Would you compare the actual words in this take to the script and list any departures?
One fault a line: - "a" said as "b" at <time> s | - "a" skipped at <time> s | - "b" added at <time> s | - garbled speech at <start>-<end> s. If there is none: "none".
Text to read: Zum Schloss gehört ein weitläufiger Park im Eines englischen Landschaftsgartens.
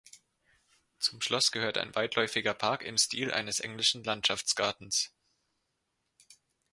- "Stil" added at 3.0 s